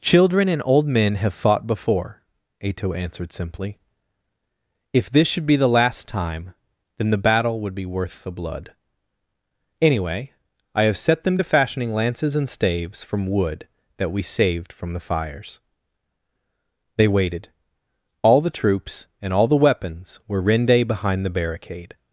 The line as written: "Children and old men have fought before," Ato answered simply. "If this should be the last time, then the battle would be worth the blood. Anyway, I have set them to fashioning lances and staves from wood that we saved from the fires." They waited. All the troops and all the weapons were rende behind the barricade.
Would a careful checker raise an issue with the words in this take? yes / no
no